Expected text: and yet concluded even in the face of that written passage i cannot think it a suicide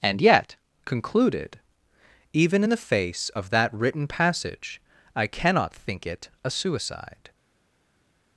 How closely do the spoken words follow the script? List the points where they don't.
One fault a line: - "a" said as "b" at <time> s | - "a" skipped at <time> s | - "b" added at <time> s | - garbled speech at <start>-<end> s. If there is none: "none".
none